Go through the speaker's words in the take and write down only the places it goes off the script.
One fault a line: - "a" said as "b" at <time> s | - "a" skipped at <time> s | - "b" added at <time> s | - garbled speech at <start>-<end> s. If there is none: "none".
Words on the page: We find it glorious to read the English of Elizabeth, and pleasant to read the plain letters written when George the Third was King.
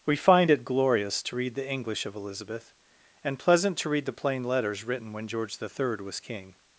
none